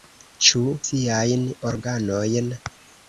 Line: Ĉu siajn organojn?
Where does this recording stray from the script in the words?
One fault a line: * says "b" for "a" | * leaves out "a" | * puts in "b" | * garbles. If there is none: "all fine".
all fine